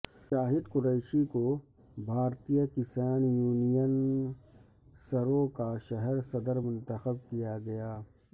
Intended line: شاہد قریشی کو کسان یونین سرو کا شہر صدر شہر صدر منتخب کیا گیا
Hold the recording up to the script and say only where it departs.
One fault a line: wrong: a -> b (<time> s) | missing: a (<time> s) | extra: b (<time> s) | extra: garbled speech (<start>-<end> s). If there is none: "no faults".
extra: بھارتیہ (2.1 s)
missing: شہر صدر (6.6 s)